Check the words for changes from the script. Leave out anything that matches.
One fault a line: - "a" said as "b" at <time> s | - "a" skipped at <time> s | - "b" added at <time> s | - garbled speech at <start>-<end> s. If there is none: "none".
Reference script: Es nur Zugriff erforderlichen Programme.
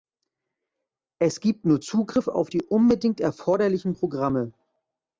- "gibt" added at 1.4 s
- "auf die unbedingt" added at 2.3 s